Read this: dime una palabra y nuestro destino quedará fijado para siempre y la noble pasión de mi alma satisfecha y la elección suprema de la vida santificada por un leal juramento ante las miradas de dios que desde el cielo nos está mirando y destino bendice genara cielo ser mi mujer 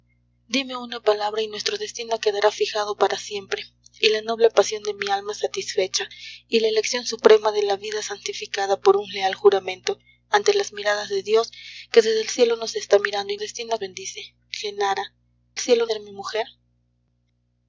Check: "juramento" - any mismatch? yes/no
no